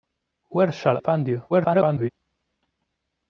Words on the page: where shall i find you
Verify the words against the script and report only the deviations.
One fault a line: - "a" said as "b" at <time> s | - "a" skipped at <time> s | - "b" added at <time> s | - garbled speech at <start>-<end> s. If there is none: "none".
- "i" skipped at 1.0 s
- garbled speech at 1.5-2.1 s